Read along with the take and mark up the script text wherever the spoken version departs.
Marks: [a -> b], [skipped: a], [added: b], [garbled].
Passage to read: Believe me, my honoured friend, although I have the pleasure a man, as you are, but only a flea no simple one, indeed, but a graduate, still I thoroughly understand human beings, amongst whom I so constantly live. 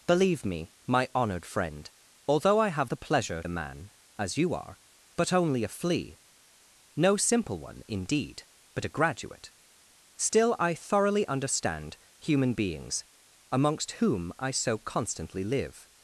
Believe me, my honoured friend, although I have the pleasure a man, as you are, but only a flea no simple one, indeed, but a graduate, still I thoroughly understand human beings, amongst whom I so constantly live.